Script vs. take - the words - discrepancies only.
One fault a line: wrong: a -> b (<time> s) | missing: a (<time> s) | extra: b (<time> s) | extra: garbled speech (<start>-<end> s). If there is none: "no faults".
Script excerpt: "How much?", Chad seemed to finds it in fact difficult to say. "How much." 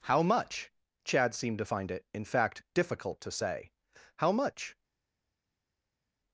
wrong: finds -> find (1.6 s)